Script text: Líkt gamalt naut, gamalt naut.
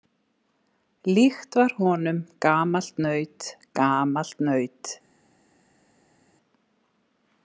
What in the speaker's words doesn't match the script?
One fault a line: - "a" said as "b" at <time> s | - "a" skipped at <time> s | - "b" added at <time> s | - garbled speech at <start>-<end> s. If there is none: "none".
- "var honum" added at 1.6 s